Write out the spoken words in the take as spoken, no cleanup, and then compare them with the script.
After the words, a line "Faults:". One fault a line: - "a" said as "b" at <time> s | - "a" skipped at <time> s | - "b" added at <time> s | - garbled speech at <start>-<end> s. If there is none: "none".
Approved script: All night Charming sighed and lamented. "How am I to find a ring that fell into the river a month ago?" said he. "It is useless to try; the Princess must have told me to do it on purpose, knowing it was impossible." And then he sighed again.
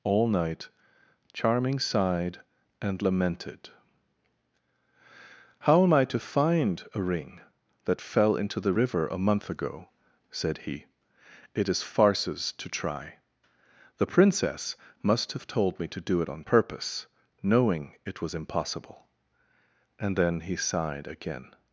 All night Charming sighed and lamented. "How am I to find a ring that fell into the river a month ago?" said he. "It is farces to try; the Princess must have told me to do it on purpose, knowing it was impossible." And then he sighed again.
Faults:
- "useless" said as "farces" at 11.8 s